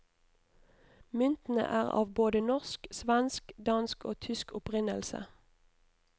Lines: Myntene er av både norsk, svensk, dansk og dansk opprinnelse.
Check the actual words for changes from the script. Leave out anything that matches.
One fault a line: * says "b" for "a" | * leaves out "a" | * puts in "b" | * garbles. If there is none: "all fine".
* says "tysk" for "dansk"